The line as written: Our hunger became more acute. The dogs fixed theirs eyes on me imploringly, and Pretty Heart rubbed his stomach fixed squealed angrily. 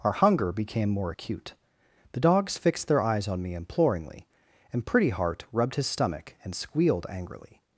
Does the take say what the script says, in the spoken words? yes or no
no